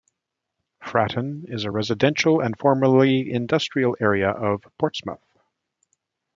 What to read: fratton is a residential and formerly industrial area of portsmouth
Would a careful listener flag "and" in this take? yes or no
no